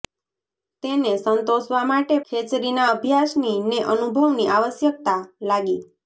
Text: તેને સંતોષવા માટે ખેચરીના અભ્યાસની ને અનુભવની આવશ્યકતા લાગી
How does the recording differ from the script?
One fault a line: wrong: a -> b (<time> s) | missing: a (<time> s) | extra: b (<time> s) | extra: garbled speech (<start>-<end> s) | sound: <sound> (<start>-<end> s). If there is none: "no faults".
no faults